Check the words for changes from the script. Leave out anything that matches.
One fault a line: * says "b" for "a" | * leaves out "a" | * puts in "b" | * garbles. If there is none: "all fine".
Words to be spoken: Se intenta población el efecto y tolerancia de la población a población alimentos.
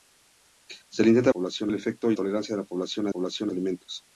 all fine